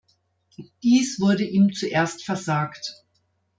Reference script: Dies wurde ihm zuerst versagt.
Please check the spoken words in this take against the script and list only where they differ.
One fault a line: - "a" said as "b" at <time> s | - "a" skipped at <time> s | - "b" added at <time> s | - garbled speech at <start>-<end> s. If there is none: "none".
none